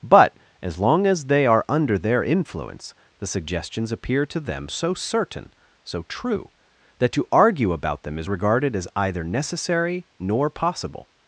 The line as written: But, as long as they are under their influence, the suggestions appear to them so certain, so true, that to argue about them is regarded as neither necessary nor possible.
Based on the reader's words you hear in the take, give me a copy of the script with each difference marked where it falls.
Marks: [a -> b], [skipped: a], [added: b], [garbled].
But, as long as they are under their influence, the suggestions appear to them so certain, so true, that to argue about them is regarded as [neither -> either] necessary nor possible.